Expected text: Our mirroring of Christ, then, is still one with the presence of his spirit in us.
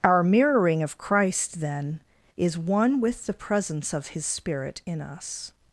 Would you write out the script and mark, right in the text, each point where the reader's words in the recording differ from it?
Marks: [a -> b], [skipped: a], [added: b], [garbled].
Our mirroring of Christ, then, is [skipped: still] one with the presence of his spirit in us.